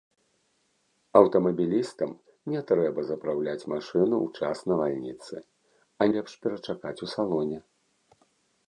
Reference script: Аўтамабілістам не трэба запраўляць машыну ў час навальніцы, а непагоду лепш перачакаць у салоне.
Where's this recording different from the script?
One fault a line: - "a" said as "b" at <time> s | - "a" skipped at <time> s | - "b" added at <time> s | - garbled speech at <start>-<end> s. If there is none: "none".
- "непагоду" skipped at 6.1 s